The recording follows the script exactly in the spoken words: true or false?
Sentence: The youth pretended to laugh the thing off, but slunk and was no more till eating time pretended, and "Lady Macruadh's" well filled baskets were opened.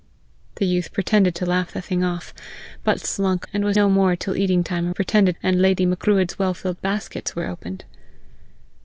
true